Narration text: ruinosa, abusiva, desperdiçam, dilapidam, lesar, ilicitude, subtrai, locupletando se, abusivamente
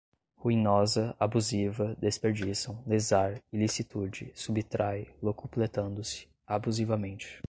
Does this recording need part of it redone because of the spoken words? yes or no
yes